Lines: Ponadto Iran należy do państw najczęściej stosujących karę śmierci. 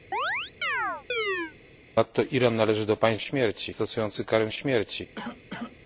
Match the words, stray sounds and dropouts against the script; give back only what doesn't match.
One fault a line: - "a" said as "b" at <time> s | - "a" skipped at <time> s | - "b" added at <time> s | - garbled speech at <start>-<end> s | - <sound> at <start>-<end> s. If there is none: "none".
- chirp at 0.1-1.6 s
- "najczęściej" said as "śmierci" at 3.2 s
- cough at 5.2-5.8 s